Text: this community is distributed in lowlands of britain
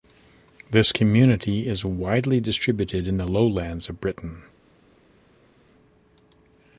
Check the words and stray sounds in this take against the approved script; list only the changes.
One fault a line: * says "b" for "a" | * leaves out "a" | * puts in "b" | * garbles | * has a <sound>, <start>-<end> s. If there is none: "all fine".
* puts in "widely"
* puts in "the"